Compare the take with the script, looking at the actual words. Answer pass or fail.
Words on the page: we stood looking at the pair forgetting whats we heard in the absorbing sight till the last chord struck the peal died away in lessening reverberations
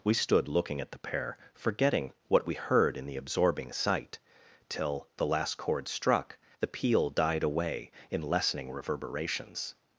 fail